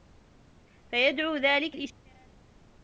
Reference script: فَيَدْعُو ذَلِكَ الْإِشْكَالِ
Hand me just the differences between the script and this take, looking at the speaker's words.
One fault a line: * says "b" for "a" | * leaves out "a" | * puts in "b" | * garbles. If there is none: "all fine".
all fine